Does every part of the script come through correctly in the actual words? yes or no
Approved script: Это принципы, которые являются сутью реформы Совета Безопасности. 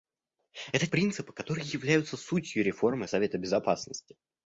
yes